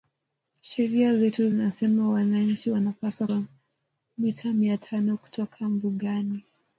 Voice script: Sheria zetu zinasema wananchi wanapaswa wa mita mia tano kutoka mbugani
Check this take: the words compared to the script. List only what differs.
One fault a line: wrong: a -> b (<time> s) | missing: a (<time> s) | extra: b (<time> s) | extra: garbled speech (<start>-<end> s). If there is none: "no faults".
no faults